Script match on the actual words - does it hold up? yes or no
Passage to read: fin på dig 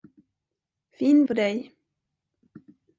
yes